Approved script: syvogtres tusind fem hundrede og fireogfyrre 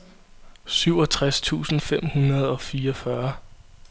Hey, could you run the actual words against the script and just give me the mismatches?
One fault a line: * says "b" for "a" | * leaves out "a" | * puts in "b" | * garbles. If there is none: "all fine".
all fine